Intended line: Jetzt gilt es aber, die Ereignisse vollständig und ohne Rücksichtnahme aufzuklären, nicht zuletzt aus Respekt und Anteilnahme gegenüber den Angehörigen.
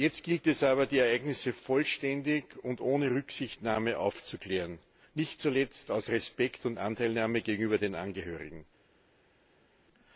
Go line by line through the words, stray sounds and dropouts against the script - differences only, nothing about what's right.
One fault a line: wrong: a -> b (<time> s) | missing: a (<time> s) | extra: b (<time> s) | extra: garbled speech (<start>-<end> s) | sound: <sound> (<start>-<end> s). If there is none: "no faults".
no faults